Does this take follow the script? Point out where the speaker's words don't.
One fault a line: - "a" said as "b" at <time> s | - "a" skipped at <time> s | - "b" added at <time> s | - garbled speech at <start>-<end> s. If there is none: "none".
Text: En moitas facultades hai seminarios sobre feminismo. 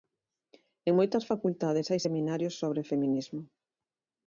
none